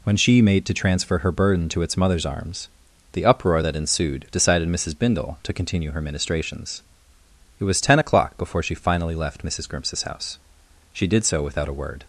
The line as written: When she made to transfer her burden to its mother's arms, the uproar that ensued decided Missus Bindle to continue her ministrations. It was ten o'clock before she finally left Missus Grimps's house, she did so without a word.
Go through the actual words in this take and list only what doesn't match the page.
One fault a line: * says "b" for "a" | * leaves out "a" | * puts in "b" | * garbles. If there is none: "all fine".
all fine